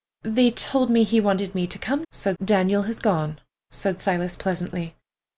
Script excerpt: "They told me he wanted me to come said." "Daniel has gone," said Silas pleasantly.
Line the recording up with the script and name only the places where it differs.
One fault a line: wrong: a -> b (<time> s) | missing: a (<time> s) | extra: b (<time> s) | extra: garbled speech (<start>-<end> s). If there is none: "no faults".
no faults